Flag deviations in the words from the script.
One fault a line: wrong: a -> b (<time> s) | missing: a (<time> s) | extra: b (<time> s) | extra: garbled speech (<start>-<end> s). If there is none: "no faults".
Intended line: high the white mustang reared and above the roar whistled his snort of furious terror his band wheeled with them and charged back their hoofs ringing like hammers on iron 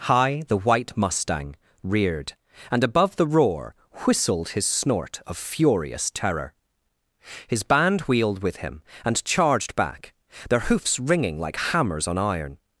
wrong: them -> him (8.6 s)